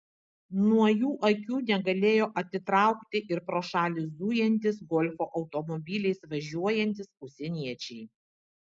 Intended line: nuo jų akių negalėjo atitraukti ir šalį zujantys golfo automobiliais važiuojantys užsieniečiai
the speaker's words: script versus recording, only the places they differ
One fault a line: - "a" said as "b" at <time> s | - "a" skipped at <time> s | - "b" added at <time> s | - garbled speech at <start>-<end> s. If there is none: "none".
- "pro" added at 3.5 s